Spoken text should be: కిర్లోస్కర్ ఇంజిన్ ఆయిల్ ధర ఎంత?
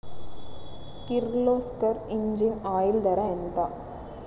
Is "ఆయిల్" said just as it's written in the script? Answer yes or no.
yes